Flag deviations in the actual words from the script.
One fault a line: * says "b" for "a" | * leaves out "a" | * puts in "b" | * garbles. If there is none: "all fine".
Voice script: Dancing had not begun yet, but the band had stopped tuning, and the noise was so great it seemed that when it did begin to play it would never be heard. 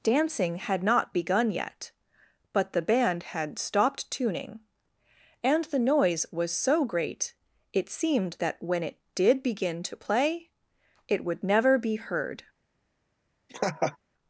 all fine